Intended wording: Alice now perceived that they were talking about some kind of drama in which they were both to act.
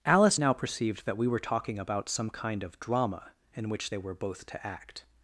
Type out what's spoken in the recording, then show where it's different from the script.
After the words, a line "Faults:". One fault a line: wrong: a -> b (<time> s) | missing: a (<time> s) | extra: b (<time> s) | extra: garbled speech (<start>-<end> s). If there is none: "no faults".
Alice now perceived that we were talking about some kind of drama in which they were both to act.
Faults:
wrong: they -> we (1.2 s)